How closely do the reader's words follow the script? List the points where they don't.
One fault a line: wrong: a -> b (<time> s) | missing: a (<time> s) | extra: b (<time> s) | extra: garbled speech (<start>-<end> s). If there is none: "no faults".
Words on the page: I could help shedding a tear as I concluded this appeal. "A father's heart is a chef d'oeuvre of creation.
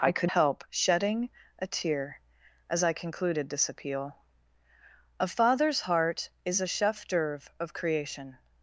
no faults